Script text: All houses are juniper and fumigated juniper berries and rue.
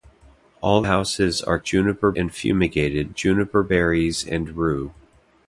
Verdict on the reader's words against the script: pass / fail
pass